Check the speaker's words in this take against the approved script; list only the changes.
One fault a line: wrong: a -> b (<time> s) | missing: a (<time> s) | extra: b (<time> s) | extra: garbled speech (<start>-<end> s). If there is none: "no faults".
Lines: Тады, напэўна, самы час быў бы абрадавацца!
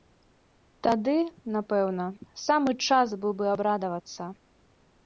no faults